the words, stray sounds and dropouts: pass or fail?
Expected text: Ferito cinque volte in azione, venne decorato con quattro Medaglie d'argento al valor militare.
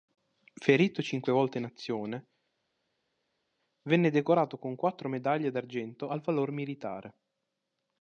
pass